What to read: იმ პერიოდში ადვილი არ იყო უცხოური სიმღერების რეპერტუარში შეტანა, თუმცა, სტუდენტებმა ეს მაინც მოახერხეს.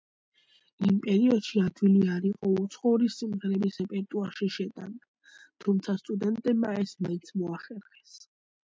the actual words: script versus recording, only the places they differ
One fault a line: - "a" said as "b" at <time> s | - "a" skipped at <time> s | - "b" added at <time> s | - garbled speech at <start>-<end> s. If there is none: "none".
none